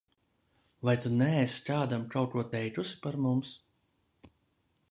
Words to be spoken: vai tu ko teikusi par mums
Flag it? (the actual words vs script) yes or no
yes